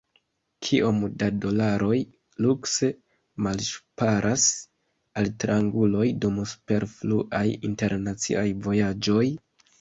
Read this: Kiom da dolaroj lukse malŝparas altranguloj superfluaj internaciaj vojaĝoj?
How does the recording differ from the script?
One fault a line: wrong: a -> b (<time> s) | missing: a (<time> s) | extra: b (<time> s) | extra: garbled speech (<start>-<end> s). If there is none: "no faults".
extra: dum (6.2 s)